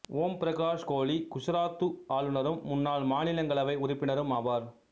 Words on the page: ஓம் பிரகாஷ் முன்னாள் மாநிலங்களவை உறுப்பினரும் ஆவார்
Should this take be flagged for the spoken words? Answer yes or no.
yes